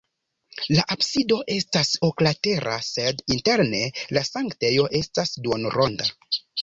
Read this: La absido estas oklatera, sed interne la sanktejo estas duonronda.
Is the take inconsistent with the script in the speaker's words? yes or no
no